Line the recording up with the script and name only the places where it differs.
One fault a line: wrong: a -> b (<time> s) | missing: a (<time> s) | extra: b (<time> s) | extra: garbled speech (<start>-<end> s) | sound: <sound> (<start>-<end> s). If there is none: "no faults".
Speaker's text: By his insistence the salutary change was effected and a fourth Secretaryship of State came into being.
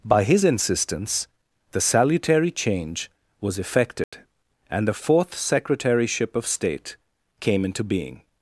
sound: dropout (4.0-4.1 s)
wrong: a -> the (4.9 s)